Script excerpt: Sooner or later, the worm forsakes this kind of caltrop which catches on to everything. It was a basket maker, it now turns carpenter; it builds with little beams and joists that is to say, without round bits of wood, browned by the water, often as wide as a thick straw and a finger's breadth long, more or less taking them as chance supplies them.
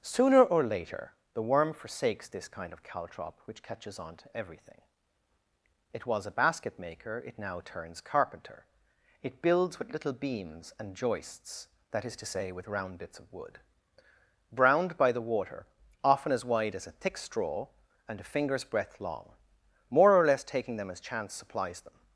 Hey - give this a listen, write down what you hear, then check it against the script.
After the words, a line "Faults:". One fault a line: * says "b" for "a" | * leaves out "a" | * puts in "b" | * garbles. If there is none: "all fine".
Sooner or later, the worm forsakes this kind of caltrop which catches on to everything. It was a basket maker, it now turns carpenter; it builds with little beams and joists that is to say, with round bits of wood, browned by the water, often as wide as a thick straw and a finger's breadth long, more or less taking them as chance supplies them.
Faults:
* says "with" for "without"